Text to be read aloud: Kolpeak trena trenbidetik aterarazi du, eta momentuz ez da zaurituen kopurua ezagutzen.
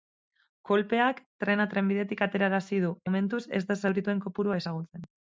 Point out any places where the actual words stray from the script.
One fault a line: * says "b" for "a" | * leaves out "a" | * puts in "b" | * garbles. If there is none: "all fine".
* leaves out "eta"